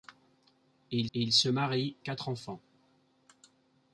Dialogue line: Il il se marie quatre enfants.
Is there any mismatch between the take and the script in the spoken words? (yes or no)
no